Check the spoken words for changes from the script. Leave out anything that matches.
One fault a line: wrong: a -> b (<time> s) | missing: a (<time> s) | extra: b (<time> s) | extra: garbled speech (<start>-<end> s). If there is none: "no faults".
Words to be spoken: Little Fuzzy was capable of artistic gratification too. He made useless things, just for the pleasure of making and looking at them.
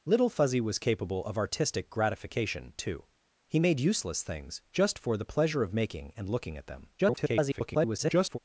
extra: garbled speech (7.0-8.4 s)